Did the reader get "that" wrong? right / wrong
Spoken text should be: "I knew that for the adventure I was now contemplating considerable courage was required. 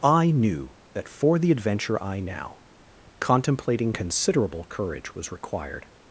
right